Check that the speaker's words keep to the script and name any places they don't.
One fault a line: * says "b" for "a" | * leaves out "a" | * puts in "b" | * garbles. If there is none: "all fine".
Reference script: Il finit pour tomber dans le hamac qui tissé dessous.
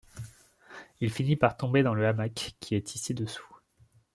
* says "par" for "pour"
* puts in "est"